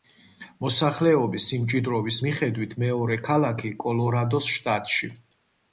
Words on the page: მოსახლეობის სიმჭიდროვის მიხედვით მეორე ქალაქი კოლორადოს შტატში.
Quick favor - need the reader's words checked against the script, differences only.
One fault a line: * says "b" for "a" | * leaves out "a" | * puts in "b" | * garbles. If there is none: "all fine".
all fine